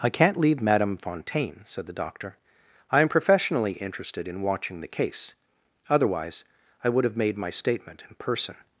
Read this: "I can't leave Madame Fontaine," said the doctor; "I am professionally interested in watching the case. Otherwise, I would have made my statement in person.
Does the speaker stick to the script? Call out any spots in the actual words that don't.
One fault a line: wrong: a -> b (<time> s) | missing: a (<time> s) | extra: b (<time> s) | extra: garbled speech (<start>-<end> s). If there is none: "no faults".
no faults